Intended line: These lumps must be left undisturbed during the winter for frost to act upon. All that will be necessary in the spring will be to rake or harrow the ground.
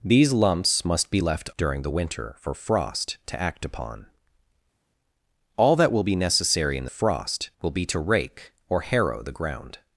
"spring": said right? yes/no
no